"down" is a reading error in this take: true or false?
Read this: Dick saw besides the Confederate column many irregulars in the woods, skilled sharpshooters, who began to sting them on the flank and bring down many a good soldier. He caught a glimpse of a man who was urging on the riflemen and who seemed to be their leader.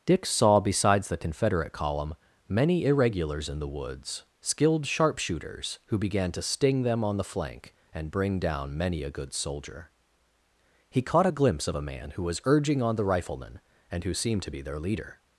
false